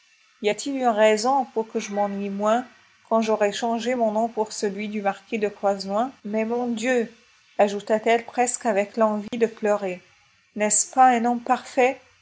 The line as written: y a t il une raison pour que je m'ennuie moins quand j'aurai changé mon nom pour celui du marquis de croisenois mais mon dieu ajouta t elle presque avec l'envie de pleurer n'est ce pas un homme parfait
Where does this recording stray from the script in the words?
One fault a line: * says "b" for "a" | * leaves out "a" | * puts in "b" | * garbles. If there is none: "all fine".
all fine